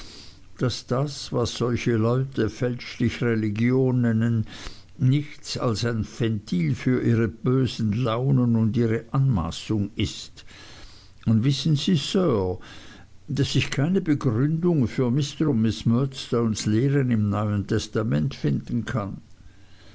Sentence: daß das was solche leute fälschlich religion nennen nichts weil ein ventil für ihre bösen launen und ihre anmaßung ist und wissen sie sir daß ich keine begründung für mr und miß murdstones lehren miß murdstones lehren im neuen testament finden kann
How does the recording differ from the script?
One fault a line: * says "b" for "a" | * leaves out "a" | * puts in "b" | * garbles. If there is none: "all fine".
* says "als" for "weil"
* leaves out "miß murdstones lehren"